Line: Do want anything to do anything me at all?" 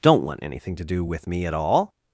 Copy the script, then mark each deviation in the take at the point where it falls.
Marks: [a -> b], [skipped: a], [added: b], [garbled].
[Do -> Don't] want anything to do [anything -> with] me at all?"